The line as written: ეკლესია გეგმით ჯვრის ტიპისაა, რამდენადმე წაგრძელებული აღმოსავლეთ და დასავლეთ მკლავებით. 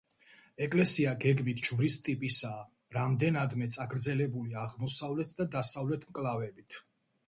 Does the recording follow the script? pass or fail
pass